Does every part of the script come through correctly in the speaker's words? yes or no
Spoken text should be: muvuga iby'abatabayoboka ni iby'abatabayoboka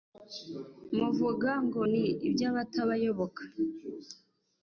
no